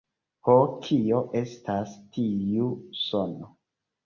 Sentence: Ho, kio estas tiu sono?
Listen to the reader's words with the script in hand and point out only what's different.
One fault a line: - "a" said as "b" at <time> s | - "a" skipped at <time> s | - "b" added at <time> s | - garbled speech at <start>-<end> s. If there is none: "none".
none